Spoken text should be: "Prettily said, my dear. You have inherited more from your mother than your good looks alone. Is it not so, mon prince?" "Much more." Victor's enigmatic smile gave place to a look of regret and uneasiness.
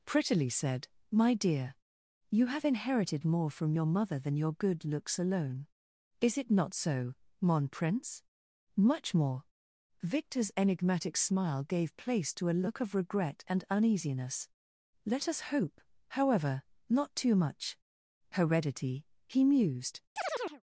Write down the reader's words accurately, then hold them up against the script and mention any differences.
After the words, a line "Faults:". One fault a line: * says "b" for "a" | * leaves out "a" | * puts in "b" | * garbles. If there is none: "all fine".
"Prettily said, my dear. You have inherited more from your mother than your good looks alone. Is it not so, mon prince?" "Much more." Victor's enigmatic smile gave place to a look of regret and uneasiness. "Let us hope, however, not too much. Heredity," he mused
Faults:
* puts in "Let us hope however not too much Heredity he mused"